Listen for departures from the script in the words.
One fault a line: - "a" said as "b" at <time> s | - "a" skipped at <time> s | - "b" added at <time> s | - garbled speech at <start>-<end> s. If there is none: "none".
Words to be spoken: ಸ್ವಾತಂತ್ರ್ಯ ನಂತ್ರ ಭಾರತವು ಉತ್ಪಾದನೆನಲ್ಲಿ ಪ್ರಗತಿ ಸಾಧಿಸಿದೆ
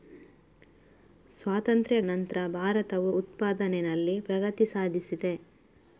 none